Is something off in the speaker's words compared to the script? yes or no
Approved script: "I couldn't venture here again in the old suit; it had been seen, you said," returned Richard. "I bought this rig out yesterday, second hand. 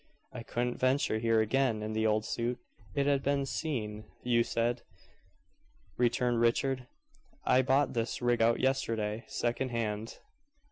no